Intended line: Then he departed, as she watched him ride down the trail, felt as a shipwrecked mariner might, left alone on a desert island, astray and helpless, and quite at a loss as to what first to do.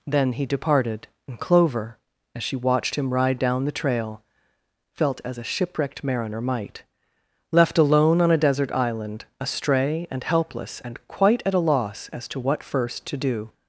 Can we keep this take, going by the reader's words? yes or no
no